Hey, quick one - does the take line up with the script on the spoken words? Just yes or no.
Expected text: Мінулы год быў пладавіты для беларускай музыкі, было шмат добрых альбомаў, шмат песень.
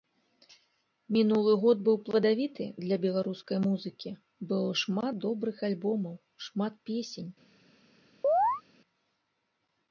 yes